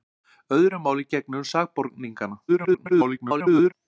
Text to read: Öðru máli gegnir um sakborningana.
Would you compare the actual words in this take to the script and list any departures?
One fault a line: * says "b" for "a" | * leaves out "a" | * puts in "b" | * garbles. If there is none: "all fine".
* garbles